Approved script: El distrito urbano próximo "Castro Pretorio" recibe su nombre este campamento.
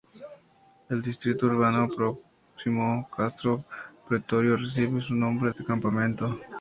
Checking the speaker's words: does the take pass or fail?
pass